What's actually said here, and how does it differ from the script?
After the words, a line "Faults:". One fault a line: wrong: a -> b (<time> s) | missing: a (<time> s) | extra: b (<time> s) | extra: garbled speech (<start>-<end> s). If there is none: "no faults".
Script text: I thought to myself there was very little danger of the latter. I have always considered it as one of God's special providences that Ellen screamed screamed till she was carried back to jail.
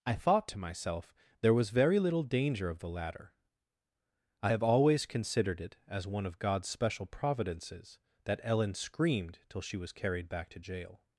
I thought to myself there was very little danger of the latter. I have always considered it as one of God's special providences that Ellen screamed till she was carried back to jail.
Faults:
missing: screamed (9.4 s)